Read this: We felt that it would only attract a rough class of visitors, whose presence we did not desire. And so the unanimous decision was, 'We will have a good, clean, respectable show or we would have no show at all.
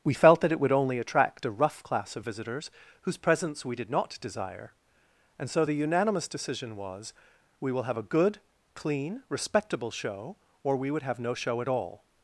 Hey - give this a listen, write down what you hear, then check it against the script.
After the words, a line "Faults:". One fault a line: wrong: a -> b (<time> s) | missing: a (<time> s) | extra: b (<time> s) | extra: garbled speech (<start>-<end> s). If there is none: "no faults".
We felt that it would only attract a rough class of visitors, whose presence we did not desire. And so the unanimous decision was, 'We will have a good, clean, respectable show or we would have no show at all.
Faults:
no faults